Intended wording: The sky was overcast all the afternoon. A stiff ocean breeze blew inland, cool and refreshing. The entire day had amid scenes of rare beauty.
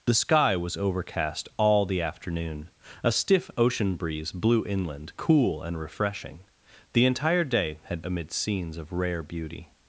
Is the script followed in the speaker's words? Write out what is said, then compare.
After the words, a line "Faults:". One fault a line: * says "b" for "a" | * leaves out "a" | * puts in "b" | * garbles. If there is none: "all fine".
The sky was overcast all the afternoon. A stiff ocean breeze blew inland, cool and refreshing. The entire day had amid scenes of rare beauty.
Faults:
all fine